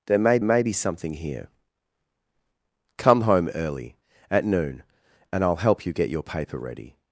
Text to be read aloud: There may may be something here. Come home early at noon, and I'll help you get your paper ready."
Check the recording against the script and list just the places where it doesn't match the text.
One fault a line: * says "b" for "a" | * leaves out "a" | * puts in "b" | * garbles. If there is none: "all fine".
all fine